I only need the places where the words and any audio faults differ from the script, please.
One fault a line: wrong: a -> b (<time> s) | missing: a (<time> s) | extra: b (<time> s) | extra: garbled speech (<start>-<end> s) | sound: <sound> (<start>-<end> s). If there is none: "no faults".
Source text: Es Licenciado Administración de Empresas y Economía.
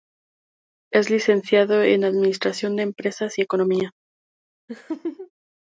extra: en (1.8 s)
sound: laugh (4.7-5.3 s)